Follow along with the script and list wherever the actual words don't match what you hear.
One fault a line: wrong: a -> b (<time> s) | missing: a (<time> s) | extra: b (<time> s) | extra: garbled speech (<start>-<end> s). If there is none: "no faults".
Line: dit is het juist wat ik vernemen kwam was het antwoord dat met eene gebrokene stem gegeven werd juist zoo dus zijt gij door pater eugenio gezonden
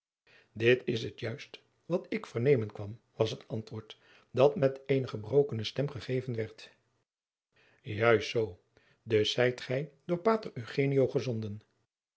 no faults